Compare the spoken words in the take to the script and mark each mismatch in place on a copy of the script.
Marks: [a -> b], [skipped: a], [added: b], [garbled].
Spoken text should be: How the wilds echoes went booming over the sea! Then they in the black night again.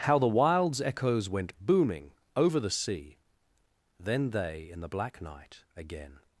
How the wilds echoes went booming over the sea! Then they in the black night again.